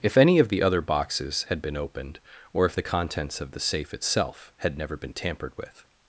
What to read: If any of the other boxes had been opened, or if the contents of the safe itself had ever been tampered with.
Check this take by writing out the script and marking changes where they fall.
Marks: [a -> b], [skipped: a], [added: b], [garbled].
If any of the other boxes had been opened, or if the contents of the safe itself had [ever -> never] been tampered with.